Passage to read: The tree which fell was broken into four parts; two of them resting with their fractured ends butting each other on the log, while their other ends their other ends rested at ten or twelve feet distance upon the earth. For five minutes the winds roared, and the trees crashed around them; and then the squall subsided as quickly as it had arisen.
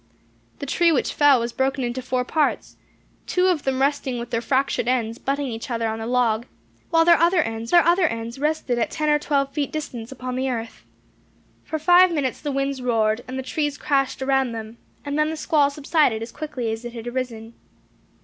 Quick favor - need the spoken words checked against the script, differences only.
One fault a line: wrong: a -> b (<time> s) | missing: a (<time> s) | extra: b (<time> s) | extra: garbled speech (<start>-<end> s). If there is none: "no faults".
no faults